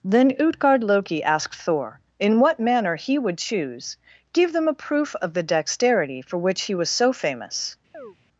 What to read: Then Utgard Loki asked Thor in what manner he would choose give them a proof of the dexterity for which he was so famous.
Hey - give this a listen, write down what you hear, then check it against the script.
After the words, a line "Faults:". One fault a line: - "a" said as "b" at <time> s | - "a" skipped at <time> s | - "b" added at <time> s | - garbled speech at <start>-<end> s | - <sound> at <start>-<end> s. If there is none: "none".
Then Utgard Loki asked Thor in what manner he would choose give them a proof of the dexterity for which he was so famous.
Faults:
- chirp at 7.9-8.2 s